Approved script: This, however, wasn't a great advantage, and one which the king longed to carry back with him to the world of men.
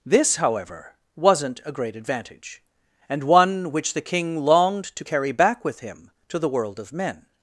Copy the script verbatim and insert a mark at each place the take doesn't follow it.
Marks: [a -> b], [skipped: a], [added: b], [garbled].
This, however, wasn't a great advantage, and one which the king longed to carry back with him to the world of men.